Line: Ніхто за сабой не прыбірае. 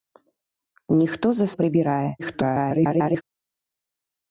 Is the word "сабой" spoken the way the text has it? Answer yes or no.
no